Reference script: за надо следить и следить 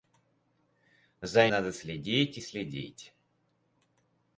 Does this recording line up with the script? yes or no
yes